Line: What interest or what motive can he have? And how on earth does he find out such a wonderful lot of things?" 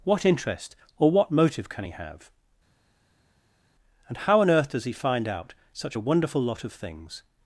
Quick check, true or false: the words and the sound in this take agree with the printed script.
true